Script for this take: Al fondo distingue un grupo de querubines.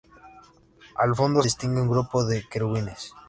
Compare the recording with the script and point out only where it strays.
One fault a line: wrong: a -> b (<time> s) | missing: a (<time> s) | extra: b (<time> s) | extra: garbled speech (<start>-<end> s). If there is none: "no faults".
no faults